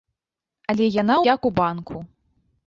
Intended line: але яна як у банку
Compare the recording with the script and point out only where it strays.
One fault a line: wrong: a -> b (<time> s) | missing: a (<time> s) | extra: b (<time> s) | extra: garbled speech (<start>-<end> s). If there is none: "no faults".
no faults